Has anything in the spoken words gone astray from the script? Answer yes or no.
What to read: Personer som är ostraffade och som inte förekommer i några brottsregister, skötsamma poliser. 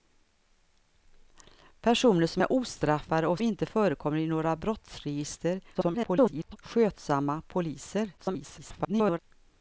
yes